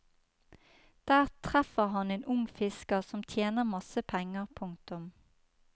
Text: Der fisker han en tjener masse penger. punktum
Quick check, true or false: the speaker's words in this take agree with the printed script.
false